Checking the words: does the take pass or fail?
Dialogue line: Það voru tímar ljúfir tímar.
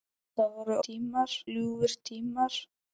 pass